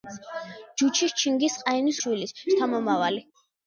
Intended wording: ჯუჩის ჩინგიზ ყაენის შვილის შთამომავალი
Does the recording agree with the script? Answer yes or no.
yes